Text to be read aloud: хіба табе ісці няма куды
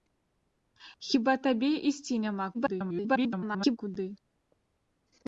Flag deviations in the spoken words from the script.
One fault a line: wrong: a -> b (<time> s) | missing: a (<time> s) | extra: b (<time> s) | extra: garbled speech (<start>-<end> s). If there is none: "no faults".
extra: garbled speech (2.5-3.8 s)